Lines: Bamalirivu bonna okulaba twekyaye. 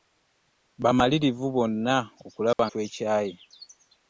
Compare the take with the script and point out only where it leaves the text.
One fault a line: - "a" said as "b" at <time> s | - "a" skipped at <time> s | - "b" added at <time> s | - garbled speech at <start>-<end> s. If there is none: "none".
none